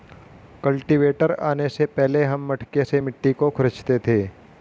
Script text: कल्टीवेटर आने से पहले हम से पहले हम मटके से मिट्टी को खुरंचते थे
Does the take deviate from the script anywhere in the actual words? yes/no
yes